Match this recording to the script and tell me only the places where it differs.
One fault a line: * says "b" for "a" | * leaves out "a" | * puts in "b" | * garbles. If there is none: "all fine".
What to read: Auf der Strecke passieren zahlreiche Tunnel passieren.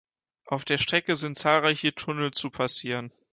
* says "sind" for "passieren"
* puts in "zu"